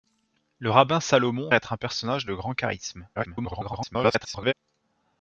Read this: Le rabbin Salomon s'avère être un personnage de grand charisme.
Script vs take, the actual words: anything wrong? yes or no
yes